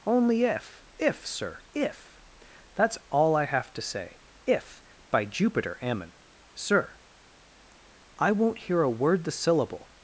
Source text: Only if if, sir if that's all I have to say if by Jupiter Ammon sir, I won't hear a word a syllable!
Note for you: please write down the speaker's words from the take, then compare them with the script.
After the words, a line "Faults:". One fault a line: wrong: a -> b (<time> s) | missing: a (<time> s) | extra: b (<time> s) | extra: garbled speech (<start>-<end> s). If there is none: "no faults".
Only if if, sir if that's all I have to say if by Jupiter Ammon sir, I won't hear a word the syllable!
Faults:
wrong: a -> the (9.2 s)